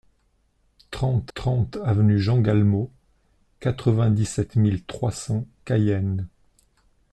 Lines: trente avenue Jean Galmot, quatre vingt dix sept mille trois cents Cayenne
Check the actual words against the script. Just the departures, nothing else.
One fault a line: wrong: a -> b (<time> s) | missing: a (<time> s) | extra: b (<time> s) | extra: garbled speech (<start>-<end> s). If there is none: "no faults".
extra: trente (1.3 s)